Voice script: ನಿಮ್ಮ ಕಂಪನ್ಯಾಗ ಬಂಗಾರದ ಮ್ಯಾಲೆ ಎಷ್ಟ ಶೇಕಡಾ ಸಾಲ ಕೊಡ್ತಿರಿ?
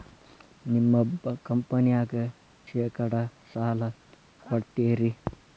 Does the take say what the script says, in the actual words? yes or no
no